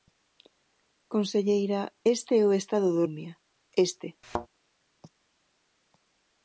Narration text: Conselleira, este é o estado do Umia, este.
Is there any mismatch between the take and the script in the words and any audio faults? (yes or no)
yes